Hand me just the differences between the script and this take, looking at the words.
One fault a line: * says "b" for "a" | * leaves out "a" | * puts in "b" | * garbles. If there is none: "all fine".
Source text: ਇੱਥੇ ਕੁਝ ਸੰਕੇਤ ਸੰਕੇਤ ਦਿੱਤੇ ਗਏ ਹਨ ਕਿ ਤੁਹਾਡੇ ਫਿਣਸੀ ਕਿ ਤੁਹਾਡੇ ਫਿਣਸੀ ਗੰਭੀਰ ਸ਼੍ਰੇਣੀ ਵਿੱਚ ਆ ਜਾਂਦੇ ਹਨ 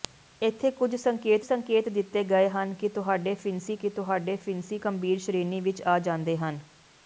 all fine